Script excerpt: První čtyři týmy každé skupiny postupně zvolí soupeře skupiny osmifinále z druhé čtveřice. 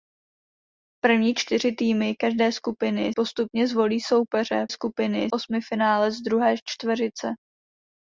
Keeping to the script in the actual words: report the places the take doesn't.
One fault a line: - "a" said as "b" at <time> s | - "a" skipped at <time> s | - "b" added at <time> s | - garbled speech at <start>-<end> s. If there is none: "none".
none